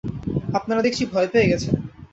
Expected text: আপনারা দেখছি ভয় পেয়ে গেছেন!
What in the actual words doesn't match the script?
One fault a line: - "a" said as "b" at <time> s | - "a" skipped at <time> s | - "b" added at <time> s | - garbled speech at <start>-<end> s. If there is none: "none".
none